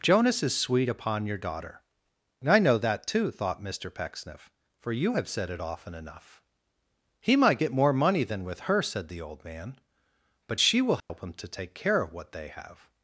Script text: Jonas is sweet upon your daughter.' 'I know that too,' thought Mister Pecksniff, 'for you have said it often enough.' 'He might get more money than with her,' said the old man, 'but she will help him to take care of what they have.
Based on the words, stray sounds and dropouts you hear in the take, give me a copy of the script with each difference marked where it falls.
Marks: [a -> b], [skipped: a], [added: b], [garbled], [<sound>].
Jonas is sweet upon your daughter.' 'I know that too,' thought Mister Pecksniff, 'for you have said it often enough.' 'He might get more money than with her,' said the old man, 'but she will help [dropout] him to take care of what they have.